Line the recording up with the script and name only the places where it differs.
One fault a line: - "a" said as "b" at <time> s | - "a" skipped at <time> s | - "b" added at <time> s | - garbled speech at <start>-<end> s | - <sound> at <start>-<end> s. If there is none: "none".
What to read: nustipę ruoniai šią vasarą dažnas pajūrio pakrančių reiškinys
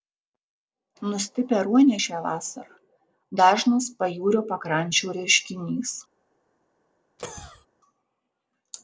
- cough at 7.2-7.7 s